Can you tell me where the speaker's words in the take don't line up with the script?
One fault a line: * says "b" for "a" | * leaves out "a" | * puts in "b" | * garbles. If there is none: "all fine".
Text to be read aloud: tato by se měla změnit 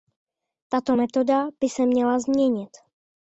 * puts in "metoda"